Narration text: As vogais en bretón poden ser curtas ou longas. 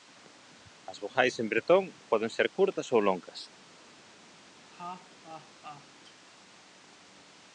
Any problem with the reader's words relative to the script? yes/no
no